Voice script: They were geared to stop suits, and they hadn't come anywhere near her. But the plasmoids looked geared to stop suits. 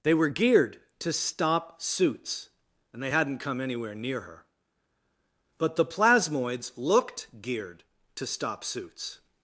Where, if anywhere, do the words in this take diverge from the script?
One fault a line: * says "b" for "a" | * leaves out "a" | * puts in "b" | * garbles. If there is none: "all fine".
all fine